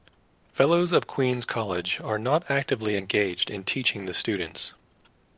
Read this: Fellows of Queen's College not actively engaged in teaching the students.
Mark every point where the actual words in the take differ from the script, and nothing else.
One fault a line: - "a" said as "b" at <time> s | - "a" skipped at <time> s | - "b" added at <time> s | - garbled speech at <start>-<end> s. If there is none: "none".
- "are" added at 2.0 s